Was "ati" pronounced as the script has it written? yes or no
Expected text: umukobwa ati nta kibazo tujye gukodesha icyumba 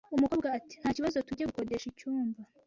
yes